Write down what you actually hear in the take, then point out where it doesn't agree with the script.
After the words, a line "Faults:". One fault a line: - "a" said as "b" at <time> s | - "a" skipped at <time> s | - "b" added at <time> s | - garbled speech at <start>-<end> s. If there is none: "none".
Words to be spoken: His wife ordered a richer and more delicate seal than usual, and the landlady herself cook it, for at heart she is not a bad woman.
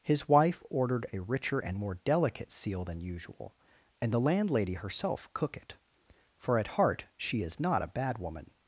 His wife ordered a richer and more delicate seal than usual, and the landlady herself cook it, for at heart she is not a bad woman.
Faults:
none